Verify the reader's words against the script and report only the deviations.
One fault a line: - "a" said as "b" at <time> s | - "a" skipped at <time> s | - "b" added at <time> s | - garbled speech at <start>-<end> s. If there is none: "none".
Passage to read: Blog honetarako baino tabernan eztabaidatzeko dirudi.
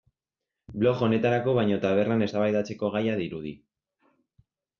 - "gaia" added at 3.0 s